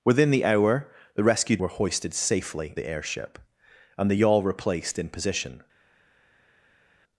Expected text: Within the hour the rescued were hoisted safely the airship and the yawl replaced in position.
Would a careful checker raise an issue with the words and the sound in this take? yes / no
no